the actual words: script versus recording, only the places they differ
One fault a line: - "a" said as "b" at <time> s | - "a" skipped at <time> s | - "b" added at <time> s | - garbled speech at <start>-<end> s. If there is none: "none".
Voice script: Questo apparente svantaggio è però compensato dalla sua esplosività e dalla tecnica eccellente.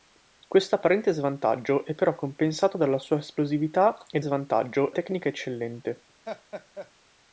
- "dalla" said as "svantaggio" at 4.2 s